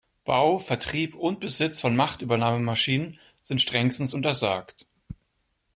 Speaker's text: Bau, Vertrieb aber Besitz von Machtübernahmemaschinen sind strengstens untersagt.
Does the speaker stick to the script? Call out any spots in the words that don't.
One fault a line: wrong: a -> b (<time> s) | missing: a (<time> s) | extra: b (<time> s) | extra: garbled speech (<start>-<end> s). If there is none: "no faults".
wrong: aber -> und (1.1 s)